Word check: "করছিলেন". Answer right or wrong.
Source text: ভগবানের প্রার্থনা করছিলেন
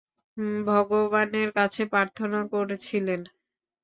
right